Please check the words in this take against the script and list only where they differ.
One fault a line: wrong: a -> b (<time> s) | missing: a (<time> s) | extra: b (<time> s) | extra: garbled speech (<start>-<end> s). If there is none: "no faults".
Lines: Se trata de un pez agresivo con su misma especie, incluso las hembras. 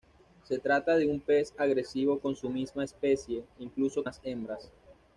no faults